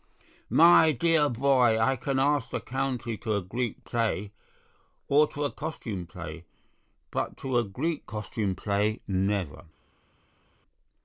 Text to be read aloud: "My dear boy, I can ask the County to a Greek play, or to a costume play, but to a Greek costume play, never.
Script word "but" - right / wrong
right